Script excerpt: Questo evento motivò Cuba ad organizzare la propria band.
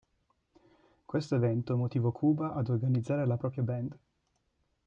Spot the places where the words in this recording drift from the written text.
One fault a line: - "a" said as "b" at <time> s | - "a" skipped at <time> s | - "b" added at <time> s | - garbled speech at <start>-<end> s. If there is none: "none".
none